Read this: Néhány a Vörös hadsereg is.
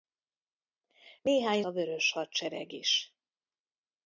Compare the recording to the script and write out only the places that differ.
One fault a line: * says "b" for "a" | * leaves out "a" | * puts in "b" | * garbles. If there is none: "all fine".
all fine